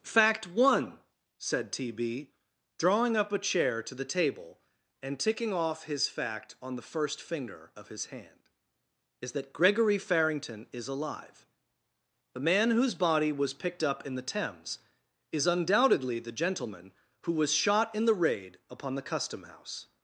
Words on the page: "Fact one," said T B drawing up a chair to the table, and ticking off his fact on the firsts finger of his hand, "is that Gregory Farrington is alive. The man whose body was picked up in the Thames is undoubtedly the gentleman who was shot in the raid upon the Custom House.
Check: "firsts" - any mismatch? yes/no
yes